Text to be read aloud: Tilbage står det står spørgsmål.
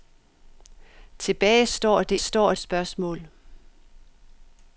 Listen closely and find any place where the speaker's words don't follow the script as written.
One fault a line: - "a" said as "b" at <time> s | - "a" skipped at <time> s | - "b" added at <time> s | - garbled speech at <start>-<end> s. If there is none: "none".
none